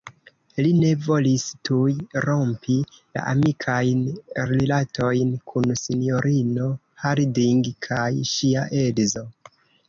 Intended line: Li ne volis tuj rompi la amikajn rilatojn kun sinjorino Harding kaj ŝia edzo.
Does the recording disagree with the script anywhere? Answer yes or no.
no